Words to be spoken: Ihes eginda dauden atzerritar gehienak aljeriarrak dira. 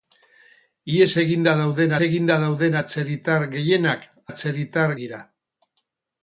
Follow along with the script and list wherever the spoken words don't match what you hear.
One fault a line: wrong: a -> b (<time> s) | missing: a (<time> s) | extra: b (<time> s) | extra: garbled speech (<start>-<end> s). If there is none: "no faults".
extra: eginda dauden (2.1 s)
wrong: aljeriarrak -> atzerritar (4.3 s)